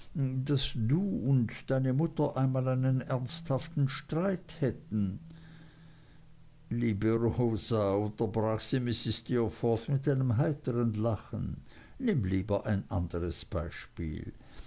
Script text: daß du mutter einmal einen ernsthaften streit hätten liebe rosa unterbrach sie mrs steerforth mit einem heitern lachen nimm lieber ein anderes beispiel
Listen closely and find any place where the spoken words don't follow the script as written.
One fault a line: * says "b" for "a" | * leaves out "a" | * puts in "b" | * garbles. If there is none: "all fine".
* puts in "und deine"